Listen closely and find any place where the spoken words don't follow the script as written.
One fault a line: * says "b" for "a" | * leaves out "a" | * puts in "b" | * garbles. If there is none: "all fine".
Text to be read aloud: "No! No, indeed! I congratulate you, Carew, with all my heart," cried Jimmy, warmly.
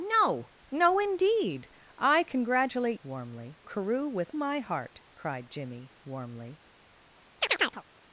* says "warmly" for "you"
* leaves out "all"